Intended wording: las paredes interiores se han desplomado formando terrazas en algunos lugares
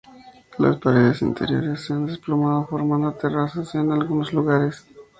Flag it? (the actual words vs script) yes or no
no